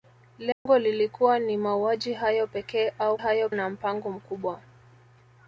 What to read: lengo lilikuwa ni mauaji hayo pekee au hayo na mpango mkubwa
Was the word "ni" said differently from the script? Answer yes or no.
no